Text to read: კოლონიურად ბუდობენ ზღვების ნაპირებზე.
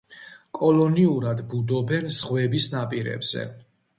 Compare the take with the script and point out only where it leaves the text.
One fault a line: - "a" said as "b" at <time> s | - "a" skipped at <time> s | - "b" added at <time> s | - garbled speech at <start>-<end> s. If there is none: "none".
none